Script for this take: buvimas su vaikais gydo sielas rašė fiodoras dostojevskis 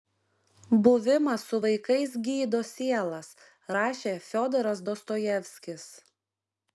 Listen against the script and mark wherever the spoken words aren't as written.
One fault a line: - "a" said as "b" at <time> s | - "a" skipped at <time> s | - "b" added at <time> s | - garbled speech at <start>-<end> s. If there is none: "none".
none